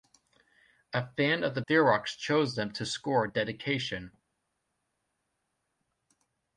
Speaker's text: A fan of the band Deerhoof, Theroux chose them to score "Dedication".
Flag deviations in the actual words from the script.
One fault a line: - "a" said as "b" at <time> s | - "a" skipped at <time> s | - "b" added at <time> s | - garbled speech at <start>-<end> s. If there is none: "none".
- "band Deerhoof" skipped at 1.6 s